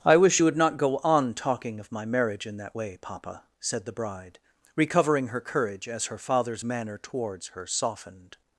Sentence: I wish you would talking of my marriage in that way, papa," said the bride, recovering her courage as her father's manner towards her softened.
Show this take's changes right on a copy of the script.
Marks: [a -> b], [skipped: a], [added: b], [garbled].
I wish you would [added: not go on] talking of my marriage in that way, papa," said the bride, recovering her courage as her father's manner towards her softened.